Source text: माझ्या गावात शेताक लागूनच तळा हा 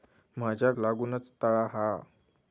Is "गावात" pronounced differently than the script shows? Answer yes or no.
yes